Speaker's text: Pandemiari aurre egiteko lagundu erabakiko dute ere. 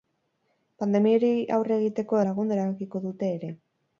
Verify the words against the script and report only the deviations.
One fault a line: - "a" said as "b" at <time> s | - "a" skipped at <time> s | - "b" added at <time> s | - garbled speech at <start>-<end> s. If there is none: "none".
none